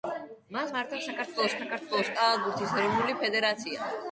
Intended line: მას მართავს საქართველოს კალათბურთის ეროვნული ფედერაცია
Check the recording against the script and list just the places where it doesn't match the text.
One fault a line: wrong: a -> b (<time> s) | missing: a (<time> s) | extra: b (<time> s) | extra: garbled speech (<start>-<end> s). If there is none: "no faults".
extra: საქართველოს (1.6 s)